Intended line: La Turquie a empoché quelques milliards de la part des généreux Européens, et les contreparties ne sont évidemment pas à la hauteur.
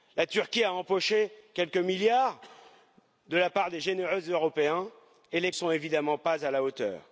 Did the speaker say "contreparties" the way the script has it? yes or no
no